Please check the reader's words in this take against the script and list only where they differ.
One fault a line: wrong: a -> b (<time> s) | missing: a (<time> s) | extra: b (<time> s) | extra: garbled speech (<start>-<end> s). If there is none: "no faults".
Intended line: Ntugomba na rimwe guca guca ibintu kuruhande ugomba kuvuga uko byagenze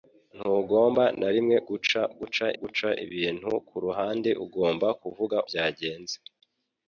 extra: guca (2.6 s)
missing: uko (5.4 s)